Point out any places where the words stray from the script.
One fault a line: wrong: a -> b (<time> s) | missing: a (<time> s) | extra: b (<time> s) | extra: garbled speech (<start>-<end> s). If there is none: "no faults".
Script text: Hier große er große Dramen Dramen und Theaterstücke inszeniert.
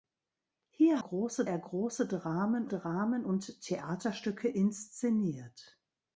no faults